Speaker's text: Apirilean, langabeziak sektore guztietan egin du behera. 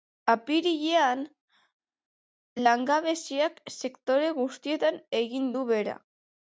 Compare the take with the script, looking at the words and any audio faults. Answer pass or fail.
pass